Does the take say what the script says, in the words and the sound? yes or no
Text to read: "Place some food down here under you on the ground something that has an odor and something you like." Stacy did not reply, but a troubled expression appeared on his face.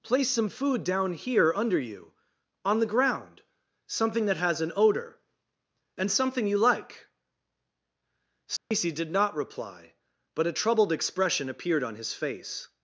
no